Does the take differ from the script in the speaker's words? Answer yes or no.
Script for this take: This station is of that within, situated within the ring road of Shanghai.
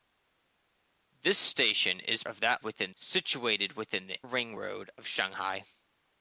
no